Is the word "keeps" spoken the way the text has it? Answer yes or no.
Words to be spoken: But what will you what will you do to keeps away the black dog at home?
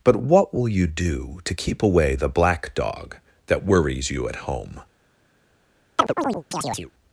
no